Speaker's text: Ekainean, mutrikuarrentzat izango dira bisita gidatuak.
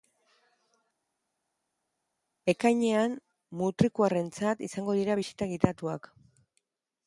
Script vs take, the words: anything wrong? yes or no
no